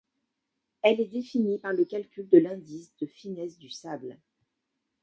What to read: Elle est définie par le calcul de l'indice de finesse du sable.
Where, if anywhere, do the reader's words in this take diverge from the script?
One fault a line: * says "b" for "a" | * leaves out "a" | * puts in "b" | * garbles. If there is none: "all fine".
all fine